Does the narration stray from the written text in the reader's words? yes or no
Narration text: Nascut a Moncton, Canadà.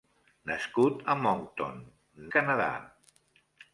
no